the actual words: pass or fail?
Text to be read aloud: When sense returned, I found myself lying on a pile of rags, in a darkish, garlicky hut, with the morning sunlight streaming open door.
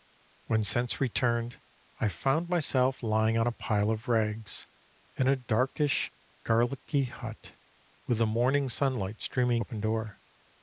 pass